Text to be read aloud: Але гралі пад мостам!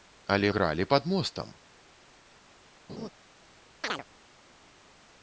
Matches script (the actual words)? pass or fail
pass